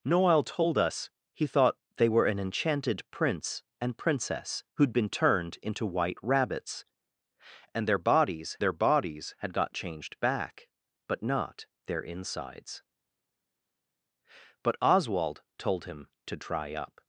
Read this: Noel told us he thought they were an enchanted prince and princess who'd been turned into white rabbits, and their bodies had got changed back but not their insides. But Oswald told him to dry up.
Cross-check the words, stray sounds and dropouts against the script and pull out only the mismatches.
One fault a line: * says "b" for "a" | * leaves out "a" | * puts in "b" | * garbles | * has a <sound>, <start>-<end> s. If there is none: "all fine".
* puts in "their bodies"